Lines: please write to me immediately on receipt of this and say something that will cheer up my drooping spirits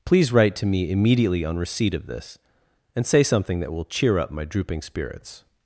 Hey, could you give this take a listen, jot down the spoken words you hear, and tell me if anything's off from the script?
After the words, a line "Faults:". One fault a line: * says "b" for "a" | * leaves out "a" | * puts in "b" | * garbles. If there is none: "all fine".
please write to me immediately on receipt of this and say something that will cheer up my drooping spirits
Faults:
all fine